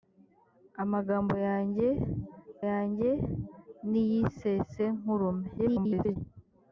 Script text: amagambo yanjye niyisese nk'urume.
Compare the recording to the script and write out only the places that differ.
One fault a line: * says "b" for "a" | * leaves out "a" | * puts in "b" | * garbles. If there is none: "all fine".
* puts in "yanjye"
* garbles